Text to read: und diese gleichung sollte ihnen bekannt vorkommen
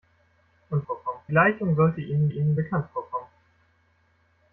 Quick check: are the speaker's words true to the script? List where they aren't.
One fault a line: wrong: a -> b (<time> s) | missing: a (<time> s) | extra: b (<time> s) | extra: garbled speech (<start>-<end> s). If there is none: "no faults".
wrong: diese -> vorkommen (0.9 s)
extra: ihnen (2.3 s)